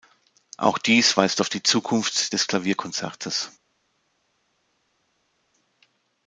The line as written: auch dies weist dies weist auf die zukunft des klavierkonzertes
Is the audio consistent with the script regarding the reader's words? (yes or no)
no